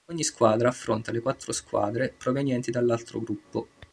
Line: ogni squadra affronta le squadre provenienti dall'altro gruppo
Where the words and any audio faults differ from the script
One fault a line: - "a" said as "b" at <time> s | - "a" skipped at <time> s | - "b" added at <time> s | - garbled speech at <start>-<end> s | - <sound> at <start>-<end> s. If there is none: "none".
- "quattro" added at 1.2 s